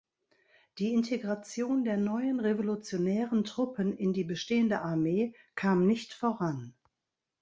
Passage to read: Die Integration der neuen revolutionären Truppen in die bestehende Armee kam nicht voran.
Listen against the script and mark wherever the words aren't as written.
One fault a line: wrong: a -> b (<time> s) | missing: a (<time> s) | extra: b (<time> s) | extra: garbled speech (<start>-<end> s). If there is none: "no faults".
no faults